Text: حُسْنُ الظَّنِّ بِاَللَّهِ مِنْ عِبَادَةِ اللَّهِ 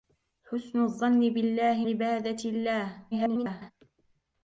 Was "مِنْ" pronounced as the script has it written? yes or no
no